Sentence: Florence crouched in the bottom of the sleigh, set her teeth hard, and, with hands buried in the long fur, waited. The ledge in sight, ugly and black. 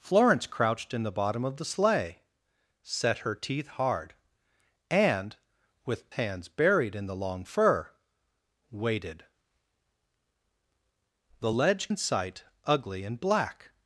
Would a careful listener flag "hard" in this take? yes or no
no